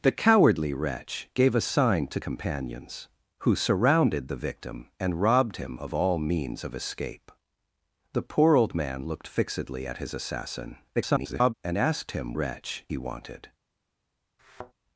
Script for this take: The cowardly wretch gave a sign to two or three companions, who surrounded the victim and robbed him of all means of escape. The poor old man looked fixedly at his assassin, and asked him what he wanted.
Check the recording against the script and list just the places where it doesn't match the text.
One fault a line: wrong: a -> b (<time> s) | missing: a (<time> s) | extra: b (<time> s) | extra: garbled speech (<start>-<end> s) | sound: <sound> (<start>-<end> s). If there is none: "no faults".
missing: two or three (2.2 s)
extra: garbled speech (10.9-11.5 s)
wrong: what -> wretch (12.3 s)
sound: thud (14.4-14.7 s)